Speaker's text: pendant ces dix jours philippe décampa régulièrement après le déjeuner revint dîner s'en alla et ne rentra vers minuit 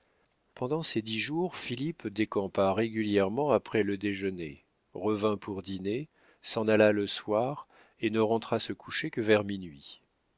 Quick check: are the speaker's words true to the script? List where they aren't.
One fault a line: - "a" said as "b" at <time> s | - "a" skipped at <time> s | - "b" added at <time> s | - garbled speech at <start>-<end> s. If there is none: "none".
- "pour" added at 5.4 s
- "le soir" added at 6.9 s
- "se coucher que" added at 8.6 s